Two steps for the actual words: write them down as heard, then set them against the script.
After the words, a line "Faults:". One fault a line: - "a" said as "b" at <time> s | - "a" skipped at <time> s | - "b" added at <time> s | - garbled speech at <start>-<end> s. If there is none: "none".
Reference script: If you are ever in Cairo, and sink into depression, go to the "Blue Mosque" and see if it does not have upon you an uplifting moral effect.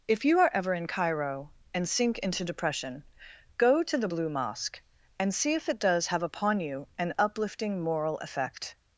If you are ever in Cairo, and sink into depression, go to the "Blue Mosque" and see if it does have upon you an uplifting moral effect.
Faults:
- "not" skipped at 6.1 s